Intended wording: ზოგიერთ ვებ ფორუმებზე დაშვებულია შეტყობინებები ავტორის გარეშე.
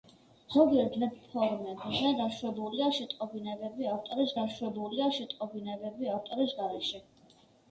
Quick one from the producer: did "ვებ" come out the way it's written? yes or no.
yes